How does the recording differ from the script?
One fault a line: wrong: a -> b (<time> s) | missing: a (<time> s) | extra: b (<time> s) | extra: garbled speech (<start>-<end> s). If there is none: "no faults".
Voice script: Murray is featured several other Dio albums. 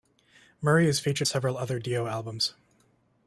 no faults